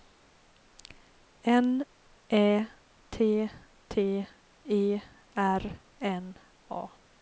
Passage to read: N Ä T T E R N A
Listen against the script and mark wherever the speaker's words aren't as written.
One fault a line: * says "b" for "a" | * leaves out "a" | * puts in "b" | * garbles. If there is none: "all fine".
all fine